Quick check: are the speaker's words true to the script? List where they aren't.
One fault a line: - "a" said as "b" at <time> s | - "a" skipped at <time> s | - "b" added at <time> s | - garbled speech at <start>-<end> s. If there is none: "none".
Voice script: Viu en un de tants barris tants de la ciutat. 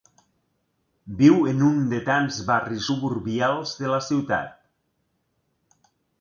- "tants" said as "suburbials" at 2.9 s